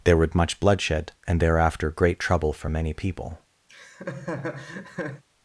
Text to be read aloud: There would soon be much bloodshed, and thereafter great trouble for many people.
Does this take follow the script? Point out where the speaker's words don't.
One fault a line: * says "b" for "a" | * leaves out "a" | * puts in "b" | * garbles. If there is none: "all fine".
* leaves out "soon be"